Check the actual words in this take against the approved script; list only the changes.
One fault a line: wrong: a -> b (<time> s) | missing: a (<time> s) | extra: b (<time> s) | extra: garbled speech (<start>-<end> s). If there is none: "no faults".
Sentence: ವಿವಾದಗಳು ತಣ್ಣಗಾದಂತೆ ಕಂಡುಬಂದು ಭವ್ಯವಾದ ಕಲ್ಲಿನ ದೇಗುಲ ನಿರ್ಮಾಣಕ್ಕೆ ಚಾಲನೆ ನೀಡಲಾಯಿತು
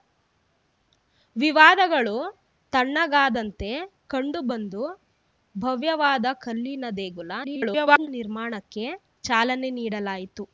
extra: garbled speech (7.4-8.1 s)